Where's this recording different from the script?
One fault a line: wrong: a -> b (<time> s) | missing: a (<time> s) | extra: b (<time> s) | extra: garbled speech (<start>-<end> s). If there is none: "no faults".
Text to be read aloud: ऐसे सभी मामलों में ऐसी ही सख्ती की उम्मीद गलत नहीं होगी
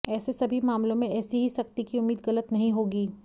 no faults